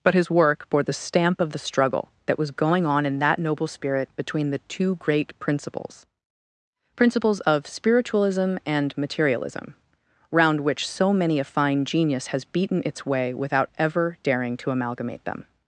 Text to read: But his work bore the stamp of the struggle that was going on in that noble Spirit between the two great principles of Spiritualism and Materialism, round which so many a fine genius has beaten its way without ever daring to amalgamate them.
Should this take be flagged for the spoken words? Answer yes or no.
yes